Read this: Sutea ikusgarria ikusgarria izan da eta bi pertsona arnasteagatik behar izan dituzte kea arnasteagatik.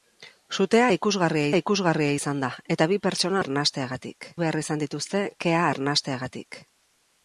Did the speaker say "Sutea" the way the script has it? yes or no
yes